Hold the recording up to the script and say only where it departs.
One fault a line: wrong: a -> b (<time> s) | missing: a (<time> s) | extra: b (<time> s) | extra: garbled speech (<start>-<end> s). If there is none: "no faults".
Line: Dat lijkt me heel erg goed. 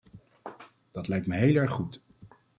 no faults